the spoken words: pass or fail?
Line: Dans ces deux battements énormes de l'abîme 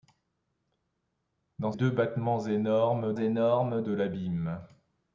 fail